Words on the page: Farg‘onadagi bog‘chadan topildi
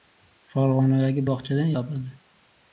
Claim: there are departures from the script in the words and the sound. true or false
false